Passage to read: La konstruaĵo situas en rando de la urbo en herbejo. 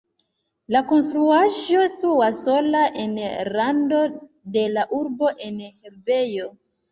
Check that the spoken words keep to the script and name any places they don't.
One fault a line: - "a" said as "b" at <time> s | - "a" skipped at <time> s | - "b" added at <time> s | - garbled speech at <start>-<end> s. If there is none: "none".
- "sola" added at 2.5 s